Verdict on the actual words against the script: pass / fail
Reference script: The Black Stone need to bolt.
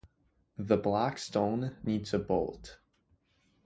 pass